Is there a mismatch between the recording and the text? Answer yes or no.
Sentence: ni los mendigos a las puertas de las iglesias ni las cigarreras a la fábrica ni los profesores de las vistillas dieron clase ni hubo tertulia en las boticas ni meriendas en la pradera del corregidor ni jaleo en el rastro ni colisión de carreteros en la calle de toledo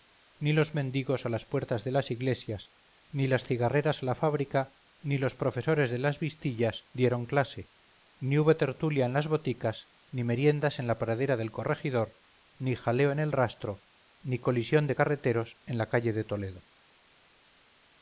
no